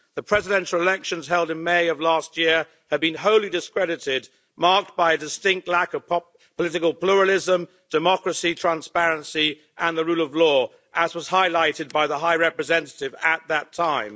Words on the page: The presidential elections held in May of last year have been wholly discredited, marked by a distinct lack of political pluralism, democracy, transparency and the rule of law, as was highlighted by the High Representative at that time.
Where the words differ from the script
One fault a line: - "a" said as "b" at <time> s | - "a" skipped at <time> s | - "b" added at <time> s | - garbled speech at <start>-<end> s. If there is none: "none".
none